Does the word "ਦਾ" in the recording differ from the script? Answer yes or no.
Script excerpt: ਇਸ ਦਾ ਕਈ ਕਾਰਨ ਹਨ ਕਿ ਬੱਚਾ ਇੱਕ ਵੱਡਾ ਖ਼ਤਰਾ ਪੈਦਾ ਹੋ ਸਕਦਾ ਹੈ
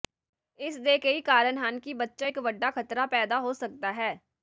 yes